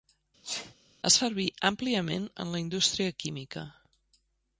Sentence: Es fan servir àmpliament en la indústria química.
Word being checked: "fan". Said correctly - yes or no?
no